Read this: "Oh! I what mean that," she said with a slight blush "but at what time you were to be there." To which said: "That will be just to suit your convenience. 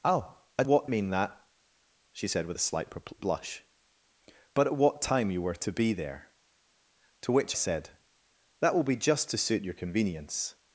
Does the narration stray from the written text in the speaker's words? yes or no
no